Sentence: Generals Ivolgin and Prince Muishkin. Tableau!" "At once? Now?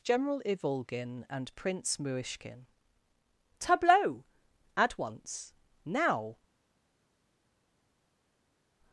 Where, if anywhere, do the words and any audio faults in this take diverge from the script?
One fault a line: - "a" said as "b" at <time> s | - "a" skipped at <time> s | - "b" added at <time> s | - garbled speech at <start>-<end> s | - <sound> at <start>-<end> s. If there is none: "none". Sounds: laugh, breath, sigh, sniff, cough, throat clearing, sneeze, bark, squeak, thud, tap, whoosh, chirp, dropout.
- "Generals" said as "General" at 0.0 s